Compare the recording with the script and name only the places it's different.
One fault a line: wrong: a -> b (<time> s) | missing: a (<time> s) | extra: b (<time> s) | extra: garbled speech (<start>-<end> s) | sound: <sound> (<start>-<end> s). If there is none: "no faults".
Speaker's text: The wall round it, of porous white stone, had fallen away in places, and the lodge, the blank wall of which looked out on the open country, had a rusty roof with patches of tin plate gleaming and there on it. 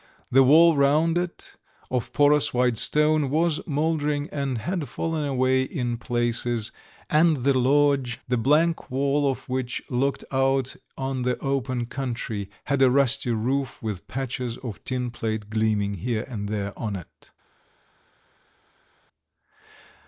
extra: was mouldering and (3.3 s)
extra: here (16.0 s)